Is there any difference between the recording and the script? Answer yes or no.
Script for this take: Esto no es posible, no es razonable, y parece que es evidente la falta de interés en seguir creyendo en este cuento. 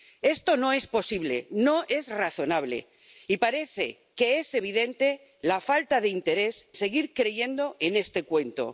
yes